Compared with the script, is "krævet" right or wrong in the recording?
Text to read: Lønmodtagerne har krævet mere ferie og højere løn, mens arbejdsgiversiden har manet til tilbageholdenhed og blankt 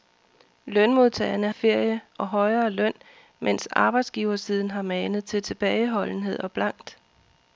wrong